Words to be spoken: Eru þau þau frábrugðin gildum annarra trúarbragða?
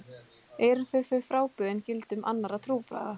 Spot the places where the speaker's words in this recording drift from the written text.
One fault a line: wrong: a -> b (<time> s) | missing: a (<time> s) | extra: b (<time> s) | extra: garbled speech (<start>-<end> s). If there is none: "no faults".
no faults